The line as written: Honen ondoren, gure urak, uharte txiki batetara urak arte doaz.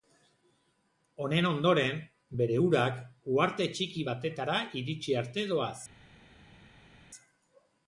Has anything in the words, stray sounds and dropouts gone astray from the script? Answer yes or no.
yes